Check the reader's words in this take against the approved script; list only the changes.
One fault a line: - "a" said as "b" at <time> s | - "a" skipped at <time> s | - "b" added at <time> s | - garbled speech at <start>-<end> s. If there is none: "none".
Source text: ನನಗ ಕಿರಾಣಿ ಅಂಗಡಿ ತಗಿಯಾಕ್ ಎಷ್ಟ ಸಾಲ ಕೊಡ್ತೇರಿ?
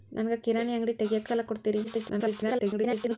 - "ಎಷ್ಟ" skipped at 1.3 s
- garbled speech at 1.8-3.2 s